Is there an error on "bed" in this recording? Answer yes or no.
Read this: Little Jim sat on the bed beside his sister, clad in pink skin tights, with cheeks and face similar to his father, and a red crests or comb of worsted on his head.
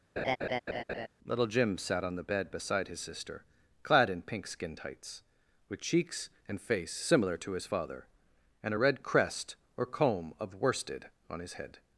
no